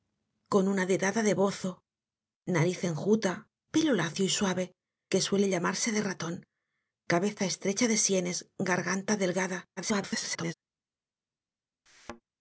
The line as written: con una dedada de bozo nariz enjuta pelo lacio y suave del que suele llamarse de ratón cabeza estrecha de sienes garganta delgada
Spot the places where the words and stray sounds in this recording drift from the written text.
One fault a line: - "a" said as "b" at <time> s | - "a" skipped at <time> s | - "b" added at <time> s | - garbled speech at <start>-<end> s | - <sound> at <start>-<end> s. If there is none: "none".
- "del" skipped at 4.7 s
- garbled speech at 9.8-10.5 s
- thud at 11.9-12.2 s